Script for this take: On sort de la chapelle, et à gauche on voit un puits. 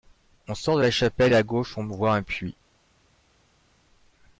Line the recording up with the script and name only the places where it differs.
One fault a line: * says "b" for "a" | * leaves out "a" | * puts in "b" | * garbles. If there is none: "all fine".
all fine